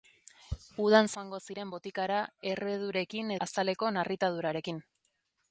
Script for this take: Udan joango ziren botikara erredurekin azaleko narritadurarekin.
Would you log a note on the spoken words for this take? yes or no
no